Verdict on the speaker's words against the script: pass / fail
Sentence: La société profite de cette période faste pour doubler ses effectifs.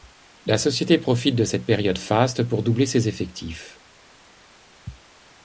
pass